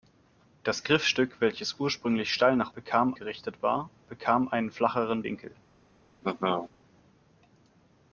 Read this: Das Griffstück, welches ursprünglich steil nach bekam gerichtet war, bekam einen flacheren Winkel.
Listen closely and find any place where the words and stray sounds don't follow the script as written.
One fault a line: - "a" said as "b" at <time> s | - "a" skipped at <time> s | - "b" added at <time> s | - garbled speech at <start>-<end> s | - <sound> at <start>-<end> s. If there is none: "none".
- laugh at 6.2-6.7 s